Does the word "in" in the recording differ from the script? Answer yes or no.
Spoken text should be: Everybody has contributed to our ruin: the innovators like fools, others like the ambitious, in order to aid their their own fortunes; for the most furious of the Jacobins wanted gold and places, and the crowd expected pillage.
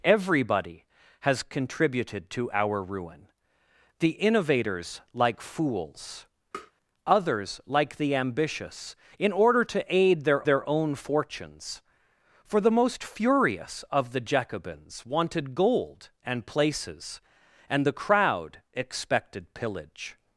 no